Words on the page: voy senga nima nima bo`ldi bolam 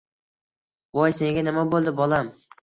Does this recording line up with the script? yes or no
no